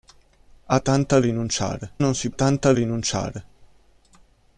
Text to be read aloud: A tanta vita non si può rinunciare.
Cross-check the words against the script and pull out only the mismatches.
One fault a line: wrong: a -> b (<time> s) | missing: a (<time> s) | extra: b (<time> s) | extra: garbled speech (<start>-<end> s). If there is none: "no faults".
wrong: vita -> rinunciare (1.2 s)
wrong: può -> tanta (2.3 s)